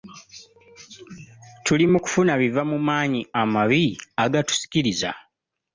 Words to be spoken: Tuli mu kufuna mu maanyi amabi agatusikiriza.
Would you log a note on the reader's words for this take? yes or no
yes